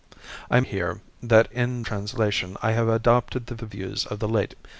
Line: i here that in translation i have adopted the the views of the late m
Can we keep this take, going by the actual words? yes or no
yes